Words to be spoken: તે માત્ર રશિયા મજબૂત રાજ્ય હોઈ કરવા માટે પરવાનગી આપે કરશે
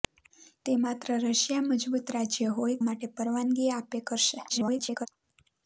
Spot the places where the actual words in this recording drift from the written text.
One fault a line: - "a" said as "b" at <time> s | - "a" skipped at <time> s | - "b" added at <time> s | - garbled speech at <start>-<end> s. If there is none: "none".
- "કરવા" skipped at 2.8 s
- garbled speech at 4.5-5.1 s